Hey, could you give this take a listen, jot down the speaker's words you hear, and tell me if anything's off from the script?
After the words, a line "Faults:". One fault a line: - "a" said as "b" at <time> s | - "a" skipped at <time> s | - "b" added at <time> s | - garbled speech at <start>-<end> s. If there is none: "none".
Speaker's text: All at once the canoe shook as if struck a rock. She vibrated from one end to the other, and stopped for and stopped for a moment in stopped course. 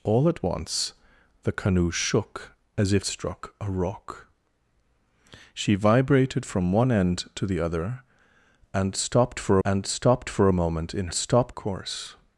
All at once the canoe shook as if struck a rock. She vibrated from one end to the other, and stopped for and stopped for a moment in stopped course.
Faults:
none